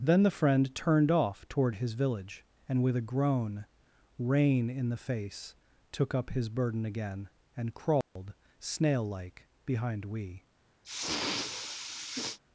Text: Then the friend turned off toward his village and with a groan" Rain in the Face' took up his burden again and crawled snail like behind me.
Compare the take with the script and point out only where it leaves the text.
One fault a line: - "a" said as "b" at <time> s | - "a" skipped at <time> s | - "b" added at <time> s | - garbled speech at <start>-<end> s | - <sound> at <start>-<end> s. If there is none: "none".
- dropout at 8.0-8.2 s
- "me" said as "we" at 10.1 s
- sniff at 10.8-12.4 s